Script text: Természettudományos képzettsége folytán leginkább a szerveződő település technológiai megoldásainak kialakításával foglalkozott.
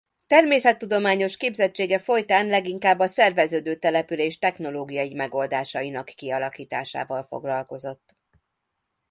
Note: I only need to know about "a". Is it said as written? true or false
true